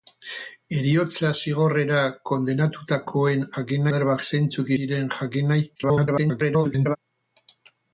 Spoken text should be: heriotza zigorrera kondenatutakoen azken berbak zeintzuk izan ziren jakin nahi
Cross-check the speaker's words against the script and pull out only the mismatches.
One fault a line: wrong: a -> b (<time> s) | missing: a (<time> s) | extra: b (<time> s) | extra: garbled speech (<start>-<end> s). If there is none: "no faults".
wrong: azken -> jakin (3.5 s)
missing: izan (4.7 s)
extra: garbled speech (5.7-7.0 s)